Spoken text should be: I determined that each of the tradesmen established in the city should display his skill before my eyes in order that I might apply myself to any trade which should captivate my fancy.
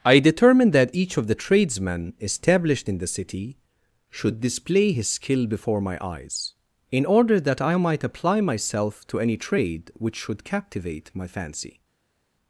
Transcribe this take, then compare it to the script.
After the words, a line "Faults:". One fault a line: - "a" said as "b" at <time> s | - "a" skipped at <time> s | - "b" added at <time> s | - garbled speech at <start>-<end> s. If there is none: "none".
I determined that each of the tradesmen established in the city should display his skill before my eyes in order that I might apply myself to any trade which should captivate my fancy.
Faults:
none